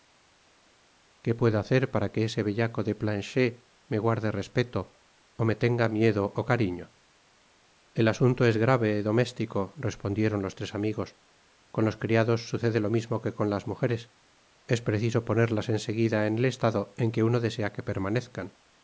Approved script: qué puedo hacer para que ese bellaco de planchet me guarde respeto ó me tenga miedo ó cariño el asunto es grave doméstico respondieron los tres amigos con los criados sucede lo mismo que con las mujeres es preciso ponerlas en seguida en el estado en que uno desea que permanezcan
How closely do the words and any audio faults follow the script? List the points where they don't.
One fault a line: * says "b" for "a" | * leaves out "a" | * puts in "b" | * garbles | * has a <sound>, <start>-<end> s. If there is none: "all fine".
all fine